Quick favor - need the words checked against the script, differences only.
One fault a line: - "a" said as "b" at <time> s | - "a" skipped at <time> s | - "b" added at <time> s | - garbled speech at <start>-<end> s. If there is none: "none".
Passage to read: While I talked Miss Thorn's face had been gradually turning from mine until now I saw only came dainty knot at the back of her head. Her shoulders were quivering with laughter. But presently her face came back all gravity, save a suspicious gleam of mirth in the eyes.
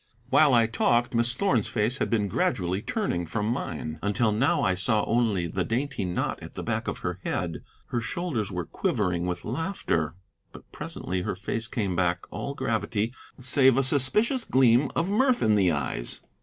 - "came" said as "the" at 5.5 s